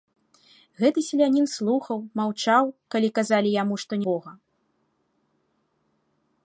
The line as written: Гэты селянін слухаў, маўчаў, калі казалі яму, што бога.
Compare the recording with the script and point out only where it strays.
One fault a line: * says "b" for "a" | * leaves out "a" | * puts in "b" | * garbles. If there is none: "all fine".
all fine